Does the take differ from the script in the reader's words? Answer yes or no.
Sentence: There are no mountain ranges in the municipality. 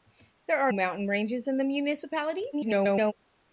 yes